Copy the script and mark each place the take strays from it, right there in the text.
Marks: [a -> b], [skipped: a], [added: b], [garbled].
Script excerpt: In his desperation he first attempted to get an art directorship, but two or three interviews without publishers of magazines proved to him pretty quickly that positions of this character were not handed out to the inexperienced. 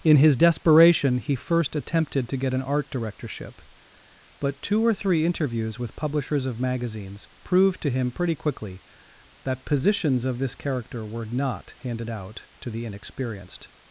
In his desperation he first attempted to get an art directorship, but two or three interviews [without -> with] publishers of magazines proved to him pretty quickly that positions of this character were not handed out to the inexperienced.